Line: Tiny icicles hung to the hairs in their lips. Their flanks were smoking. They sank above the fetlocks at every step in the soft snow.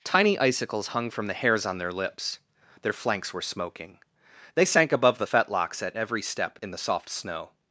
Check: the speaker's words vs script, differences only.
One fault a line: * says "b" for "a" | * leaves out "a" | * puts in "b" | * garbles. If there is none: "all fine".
* says "from" for "to"
* says "on" for "in"